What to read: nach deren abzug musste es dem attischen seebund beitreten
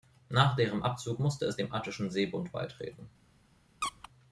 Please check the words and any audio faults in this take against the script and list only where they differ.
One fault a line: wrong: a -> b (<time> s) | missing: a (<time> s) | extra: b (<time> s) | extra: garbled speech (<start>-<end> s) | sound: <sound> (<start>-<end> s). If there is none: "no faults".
sound: squeak (3.8-4.1 s)